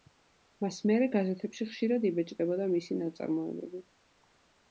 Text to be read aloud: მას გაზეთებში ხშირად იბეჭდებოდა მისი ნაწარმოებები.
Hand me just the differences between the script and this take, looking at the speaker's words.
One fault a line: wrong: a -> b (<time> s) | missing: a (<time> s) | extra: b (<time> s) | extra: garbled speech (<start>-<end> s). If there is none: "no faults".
extra: მერე (0.9 s)